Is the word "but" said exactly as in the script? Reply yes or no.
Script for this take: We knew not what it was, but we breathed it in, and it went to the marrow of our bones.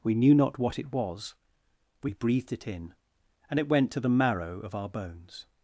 no